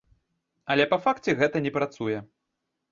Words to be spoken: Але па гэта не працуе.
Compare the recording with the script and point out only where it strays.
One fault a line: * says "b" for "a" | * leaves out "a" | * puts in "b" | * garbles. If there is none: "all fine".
* puts in "факце"